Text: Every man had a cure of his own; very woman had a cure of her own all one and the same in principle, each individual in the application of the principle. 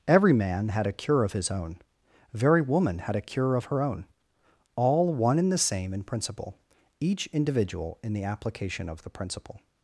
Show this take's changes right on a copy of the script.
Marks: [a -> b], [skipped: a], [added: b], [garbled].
Every man had a cure of his own; very woman had a cure of her own all one and the same in principle, each individual in the application of the principle.